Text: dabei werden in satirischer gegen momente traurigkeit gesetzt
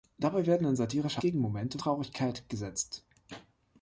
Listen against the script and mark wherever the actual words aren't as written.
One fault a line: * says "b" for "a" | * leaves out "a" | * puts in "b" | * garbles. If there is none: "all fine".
all fine